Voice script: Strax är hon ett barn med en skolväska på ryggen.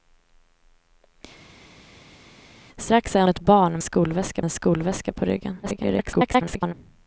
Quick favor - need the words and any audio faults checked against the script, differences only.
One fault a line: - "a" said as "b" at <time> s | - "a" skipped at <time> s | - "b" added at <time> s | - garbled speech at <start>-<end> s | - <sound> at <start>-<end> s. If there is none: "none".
- "hon" skipped at 3.2 s
- "med" said as "skolväska" at 3.8 s
- garbled speech at 5.6-6.7 s